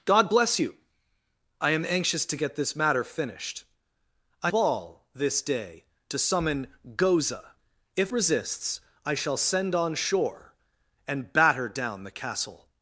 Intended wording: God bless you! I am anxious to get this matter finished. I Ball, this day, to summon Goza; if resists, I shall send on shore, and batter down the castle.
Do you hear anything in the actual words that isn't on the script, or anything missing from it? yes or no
no